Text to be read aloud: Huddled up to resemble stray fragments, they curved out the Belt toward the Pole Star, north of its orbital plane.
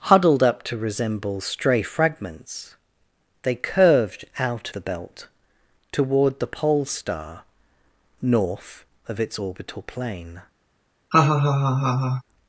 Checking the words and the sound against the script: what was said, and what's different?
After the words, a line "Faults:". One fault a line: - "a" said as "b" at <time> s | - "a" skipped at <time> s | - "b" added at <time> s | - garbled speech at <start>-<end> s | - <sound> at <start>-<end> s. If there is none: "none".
Huddled up to resemble stray fragments, they curved out the Belt toward the Pole Star, north of its orbital plane.
Faults:
- laugh at 11.1-12.2 s